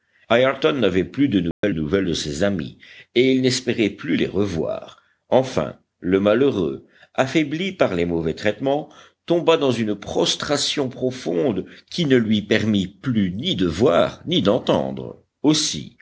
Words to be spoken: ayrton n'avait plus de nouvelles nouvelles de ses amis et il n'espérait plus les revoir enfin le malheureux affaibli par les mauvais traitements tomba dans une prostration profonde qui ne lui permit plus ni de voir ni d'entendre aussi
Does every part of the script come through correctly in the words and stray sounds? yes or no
no